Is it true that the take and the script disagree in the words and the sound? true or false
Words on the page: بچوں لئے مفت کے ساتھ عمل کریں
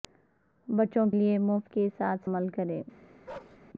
true